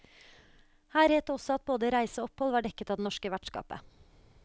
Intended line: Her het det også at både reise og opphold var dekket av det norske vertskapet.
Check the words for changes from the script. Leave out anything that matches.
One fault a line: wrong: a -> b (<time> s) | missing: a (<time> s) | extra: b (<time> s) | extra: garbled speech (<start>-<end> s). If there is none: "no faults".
no faults